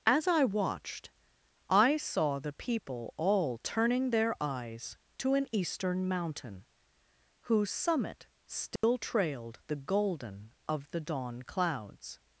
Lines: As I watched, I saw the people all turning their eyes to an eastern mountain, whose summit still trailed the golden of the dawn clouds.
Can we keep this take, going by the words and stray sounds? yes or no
no